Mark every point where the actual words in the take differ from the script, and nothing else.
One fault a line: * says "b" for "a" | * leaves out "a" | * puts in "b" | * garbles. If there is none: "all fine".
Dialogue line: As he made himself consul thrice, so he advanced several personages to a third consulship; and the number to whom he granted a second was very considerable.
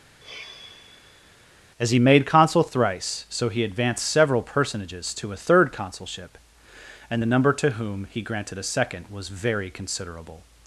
* leaves out "himself"